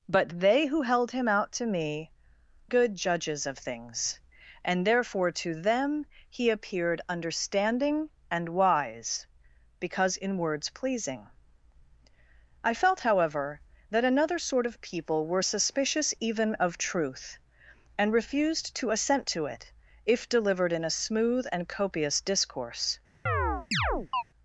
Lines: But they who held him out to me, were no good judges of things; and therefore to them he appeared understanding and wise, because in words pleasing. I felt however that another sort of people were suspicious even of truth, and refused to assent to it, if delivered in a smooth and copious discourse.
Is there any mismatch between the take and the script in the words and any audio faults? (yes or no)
yes